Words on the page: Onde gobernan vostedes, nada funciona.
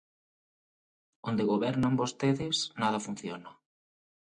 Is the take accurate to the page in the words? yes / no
yes